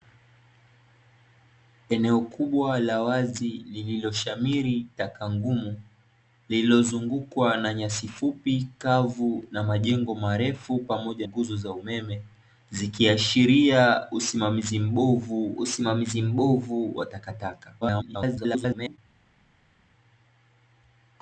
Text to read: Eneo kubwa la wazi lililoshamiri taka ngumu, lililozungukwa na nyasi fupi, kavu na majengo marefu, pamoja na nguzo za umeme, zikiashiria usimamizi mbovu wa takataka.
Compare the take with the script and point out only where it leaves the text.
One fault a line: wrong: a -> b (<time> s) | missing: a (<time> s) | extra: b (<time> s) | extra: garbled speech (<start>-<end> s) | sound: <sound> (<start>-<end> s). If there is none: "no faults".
missing: na (11.3 s)
extra: usimamizi mbovu (15.6 s)
extra: garbled speech (17.8-19.0 s)